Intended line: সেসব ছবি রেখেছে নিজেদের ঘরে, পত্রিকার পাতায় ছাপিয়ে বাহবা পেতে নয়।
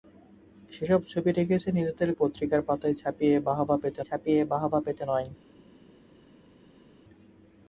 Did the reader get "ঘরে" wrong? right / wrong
wrong